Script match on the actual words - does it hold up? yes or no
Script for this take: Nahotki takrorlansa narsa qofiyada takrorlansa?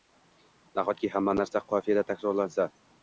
no